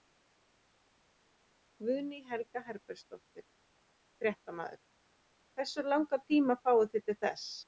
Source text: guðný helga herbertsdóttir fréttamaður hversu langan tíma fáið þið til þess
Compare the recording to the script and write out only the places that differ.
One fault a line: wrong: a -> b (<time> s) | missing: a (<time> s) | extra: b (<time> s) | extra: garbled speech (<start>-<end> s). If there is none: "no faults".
no faults